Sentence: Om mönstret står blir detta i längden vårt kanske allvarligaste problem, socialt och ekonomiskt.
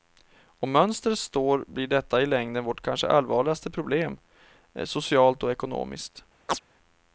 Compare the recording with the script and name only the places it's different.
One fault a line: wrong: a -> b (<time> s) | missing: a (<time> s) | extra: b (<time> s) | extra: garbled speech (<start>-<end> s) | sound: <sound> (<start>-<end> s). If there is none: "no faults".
sound: chirp (6.5-6.6 s)